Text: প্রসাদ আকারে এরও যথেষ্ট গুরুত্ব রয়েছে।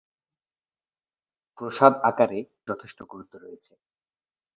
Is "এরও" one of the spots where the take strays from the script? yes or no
yes